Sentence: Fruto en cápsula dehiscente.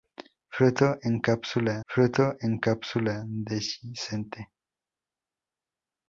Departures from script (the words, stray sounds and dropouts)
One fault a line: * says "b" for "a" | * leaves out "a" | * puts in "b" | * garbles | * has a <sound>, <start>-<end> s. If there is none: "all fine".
* puts in "fruto en cápsula"